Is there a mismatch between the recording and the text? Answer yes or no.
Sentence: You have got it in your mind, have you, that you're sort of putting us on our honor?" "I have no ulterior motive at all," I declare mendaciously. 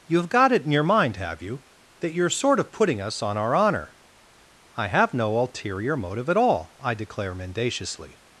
no